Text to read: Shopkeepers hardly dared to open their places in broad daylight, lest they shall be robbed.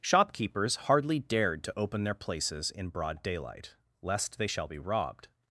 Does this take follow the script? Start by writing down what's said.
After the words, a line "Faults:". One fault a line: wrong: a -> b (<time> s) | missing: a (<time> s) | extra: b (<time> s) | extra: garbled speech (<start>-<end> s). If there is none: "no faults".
Shopkeepers hardly dared to open their places in broad daylight, lest they shall be robbed.
Faults:
no faults